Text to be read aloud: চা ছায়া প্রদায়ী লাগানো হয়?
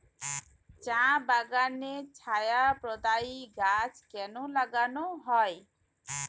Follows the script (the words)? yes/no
no